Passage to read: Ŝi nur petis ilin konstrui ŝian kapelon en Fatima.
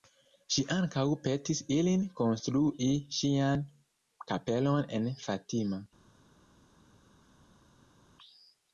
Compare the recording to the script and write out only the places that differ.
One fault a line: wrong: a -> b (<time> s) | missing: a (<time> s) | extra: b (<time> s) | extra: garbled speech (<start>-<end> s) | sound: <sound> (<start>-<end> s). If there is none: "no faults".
wrong: nur -> ankaŭ (0.8 s)